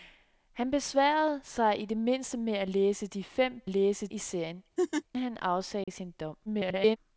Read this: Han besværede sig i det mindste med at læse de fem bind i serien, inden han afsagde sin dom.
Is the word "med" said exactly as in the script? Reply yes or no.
yes